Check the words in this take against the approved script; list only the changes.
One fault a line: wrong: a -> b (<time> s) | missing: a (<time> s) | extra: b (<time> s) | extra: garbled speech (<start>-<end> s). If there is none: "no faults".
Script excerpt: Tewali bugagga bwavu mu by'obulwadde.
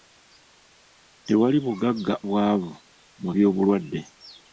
no faults